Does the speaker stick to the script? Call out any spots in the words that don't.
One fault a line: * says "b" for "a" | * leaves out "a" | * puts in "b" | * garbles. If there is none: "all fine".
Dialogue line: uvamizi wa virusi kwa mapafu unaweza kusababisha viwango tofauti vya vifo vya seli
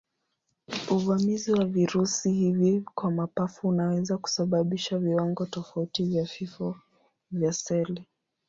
* puts in "hivi"